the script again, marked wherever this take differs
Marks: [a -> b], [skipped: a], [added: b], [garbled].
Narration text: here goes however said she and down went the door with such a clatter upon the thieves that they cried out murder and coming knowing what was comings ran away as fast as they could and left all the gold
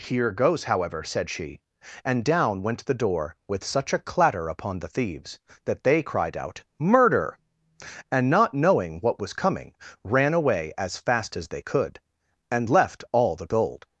here goes however said she and down went the door with such a clatter upon the thieves that they cried out murder and [coming -> not] knowing what was [comings -> coming] ran away as fast as they could and left all the gold